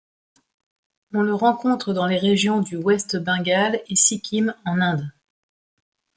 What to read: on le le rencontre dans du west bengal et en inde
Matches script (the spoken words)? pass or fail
fail